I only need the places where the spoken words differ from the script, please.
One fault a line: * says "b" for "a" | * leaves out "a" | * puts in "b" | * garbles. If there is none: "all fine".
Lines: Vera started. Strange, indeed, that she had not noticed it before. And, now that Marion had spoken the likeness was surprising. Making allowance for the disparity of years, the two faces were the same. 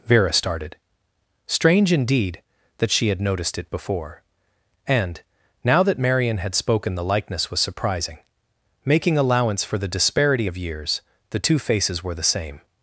* leaves out "not"